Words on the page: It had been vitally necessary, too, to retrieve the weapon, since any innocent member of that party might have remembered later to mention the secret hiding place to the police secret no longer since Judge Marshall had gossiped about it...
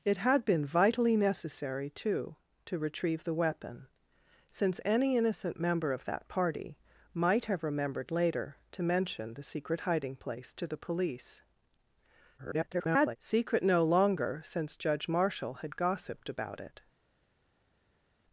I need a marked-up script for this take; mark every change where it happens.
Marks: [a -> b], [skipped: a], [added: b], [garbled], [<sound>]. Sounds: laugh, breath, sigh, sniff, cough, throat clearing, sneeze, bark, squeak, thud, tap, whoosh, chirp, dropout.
It had been vitally necessary, too, to retrieve the weapon, since any innocent member of that party might have remembered later to mention the secret hiding place to the police [garbled] secret no longer since Judge Marshall had gossiped about it...